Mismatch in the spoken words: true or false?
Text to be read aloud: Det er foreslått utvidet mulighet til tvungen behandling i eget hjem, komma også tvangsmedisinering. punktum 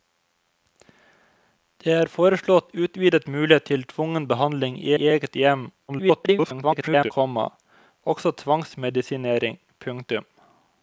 true